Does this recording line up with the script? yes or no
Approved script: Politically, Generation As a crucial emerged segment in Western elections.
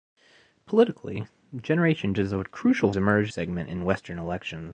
yes